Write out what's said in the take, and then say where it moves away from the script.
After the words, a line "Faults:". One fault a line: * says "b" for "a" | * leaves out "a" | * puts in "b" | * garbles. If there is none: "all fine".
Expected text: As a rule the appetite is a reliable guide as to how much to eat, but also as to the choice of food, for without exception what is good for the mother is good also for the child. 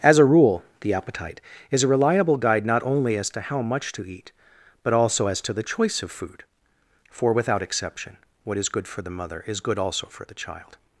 As a rule the appetite is a reliable guide not only as to how much to eat, but also as to the choice of food, for without exception what is good for the mother is good also for the child.
Faults:
* puts in "not only"